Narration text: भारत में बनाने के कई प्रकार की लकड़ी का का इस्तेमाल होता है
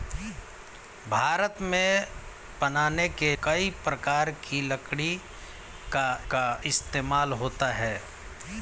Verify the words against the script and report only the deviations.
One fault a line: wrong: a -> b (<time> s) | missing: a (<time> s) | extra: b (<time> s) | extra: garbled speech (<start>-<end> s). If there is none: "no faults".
no faults